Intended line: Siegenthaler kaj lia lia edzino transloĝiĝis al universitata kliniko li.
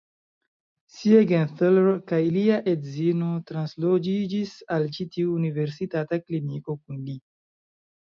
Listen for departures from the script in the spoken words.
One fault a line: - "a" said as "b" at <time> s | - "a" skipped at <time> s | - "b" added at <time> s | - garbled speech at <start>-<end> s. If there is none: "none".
- "lia" skipped at 2.6 s
- "ĉi tiu" added at 5.0 s
- "kun" added at 6.8 s